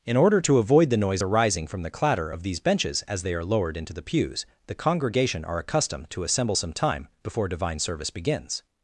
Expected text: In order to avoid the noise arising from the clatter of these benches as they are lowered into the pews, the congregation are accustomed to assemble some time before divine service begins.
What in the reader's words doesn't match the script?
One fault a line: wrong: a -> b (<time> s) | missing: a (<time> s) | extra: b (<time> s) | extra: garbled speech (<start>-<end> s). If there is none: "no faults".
no faults